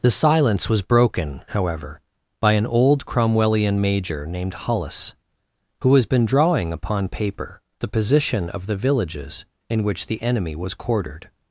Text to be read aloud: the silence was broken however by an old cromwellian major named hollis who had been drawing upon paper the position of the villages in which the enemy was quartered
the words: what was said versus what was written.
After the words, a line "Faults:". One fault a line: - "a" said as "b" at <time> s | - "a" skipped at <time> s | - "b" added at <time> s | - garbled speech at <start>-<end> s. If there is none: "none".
the silence was broken however by an old cromwellian major named hollis who has been drawing upon paper the position of the villages in which the enemy was quartered
Faults:
- "had" said as "has" at 5.9 s